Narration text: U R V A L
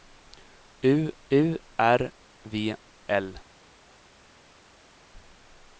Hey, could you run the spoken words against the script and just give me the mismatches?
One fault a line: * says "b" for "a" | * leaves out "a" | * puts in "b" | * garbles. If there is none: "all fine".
* puts in "u"
* leaves out "A"